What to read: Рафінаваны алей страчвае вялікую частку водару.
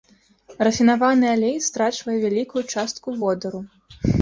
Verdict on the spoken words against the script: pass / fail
pass